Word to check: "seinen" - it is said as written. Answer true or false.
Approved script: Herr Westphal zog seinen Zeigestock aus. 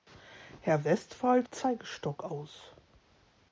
false